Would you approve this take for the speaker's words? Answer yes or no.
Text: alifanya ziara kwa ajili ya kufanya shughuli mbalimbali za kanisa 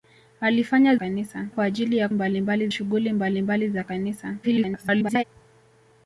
no